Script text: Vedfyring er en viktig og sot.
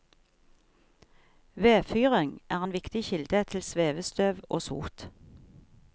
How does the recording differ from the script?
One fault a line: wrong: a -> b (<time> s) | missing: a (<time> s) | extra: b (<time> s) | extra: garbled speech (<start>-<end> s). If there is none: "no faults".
extra: kilde til svevestøv (3.1 s)